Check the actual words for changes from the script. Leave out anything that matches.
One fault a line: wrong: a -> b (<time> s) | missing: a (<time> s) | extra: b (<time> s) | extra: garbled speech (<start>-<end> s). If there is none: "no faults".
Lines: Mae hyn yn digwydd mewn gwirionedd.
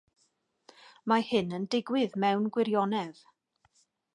no faults